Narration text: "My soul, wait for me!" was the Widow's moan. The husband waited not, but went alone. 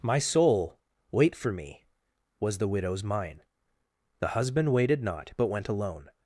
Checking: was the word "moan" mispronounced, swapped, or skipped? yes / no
yes